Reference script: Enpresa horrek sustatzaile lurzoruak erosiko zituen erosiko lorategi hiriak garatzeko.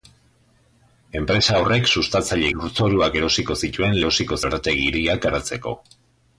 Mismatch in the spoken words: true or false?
false